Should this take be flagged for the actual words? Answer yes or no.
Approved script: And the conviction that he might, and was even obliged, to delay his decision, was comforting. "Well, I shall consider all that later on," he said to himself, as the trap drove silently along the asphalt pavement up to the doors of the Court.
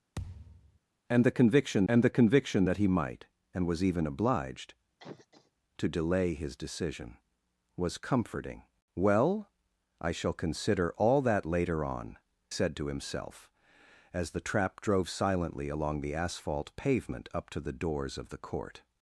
yes